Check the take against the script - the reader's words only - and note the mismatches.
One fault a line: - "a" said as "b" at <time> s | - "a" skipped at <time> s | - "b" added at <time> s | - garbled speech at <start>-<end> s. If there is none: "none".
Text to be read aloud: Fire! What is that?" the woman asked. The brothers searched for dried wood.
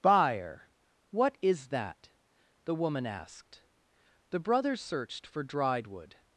- "Fire" said as "Buyer" at 0.0 s